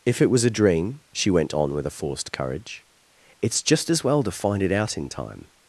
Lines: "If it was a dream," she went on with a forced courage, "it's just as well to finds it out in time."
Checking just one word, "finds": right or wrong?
wrong